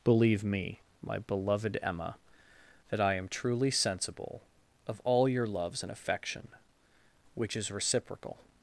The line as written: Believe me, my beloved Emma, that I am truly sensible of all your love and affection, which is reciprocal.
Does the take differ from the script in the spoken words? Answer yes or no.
yes